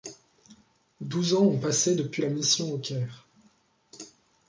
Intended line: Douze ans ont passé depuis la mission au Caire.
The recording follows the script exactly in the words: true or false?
true